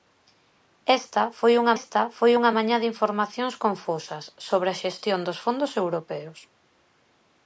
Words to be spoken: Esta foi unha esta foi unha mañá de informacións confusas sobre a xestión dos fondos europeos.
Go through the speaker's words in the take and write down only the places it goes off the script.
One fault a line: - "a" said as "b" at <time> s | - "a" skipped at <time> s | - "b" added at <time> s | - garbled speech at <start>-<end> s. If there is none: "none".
none